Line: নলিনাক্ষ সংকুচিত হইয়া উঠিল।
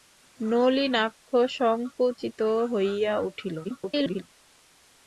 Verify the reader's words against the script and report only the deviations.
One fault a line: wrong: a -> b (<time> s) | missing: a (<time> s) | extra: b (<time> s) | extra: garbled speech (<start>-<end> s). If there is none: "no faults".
extra: garbled speech (3.6-4.2 s)